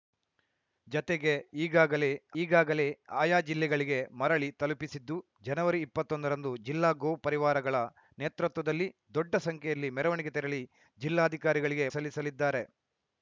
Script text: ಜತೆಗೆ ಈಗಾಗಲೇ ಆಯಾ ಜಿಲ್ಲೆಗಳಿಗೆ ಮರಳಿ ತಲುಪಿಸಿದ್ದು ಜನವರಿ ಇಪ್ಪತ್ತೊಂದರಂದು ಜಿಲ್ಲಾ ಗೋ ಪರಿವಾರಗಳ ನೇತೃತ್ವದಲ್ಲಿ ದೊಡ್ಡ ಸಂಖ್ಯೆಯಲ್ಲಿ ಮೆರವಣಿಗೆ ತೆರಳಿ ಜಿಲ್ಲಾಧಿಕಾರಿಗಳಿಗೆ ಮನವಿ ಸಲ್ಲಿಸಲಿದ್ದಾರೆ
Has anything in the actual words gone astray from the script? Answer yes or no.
yes